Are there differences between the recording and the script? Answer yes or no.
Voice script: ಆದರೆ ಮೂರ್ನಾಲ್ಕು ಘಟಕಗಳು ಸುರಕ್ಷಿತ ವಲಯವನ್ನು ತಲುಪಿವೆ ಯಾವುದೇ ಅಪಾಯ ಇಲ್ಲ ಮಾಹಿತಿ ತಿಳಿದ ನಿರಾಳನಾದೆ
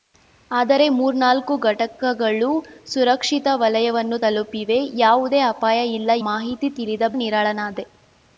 no